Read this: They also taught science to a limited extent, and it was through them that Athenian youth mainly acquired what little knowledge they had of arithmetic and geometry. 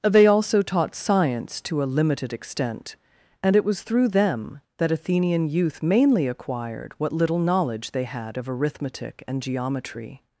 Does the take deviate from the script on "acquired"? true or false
false